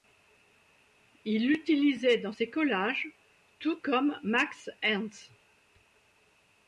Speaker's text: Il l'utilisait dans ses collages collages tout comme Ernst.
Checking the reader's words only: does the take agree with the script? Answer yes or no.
no